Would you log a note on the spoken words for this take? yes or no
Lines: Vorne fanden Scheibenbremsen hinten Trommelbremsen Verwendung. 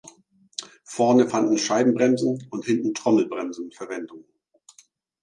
yes